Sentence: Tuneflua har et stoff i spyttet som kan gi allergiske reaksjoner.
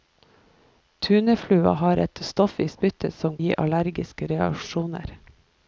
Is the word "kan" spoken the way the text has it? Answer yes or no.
no